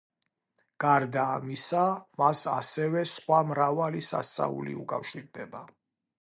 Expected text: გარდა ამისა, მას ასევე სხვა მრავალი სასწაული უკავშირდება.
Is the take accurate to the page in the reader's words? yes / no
yes